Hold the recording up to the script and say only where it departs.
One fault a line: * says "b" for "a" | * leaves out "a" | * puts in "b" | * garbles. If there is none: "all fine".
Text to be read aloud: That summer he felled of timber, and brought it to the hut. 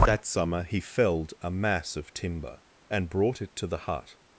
* puts in "a mass"